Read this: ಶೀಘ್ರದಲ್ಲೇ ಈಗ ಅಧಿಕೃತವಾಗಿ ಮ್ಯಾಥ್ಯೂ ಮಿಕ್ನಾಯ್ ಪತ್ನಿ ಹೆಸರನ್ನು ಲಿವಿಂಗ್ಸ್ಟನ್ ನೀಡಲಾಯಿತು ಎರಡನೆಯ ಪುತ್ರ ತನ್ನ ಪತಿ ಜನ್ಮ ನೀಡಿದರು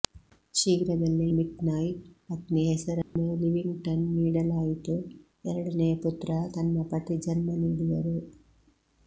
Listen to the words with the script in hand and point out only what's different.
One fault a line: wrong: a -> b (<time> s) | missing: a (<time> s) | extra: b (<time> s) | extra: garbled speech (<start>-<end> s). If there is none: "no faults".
missing: ಈಗ ಅಧಿಕೃತವಾಗಿ ಮ್ಯಾಥ್ಯೂ (1.2 s)